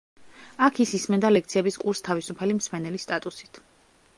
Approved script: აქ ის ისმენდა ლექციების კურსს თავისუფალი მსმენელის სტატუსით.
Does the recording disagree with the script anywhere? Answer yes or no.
no